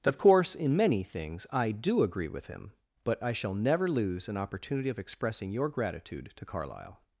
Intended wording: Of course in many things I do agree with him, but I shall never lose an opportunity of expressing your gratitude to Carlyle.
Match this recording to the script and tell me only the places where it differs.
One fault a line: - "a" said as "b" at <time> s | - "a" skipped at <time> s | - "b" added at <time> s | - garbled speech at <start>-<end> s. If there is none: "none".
none